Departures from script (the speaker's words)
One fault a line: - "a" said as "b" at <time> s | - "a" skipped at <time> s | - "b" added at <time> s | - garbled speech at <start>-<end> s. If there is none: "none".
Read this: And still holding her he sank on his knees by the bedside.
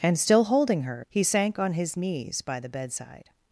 none